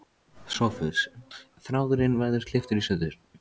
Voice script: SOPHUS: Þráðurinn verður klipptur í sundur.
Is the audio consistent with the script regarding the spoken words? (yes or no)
yes